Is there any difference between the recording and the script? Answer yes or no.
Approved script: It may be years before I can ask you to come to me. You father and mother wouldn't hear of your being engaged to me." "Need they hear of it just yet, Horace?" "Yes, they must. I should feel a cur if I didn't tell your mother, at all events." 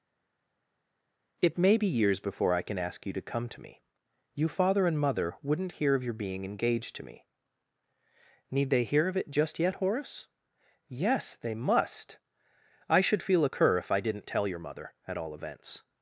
no